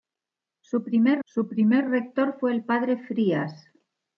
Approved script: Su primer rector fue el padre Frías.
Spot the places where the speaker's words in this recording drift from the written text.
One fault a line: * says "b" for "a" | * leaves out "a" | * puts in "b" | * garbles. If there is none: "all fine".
* puts in "su primer"